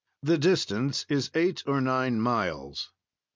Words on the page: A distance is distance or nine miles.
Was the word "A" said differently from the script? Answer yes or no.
yes